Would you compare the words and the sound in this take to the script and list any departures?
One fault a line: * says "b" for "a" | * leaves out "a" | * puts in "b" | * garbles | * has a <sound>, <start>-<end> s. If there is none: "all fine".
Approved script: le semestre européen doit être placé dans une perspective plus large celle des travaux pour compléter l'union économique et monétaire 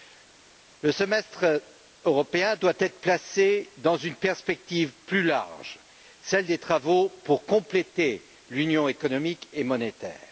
all fine